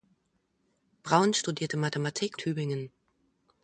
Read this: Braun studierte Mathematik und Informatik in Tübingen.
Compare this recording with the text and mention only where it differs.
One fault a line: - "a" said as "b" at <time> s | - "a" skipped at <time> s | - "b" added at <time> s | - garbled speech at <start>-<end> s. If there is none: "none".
- "und Informatik in" skipped at 2.4 s